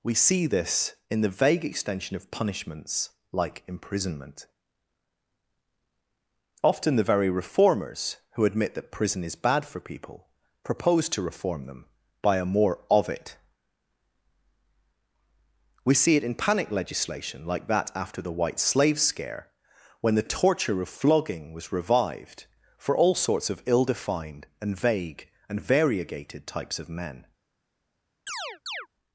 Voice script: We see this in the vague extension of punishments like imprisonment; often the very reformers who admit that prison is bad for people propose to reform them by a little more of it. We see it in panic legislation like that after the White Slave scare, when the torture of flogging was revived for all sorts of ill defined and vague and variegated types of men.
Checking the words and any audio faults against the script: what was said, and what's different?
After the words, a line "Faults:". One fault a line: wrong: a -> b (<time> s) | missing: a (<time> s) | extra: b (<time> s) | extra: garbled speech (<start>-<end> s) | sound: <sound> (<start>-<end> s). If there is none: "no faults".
We see this in the vague extension of punishments like imprisonment; often the very reformers who admit that prison is bad for people propose to reform them by a more of it. We see it in panic legislation like that after the White Slave scare, when the torture of flogging was revived for all sorts of ill defined and vague and variegated types of men.
Faults:
missing: little (12.4 s)
sound: chirp (28.3-28.9 s)